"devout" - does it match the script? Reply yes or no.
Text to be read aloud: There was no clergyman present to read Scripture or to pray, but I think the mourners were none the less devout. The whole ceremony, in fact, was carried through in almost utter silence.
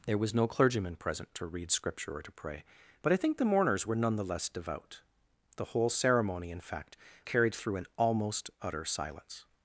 yes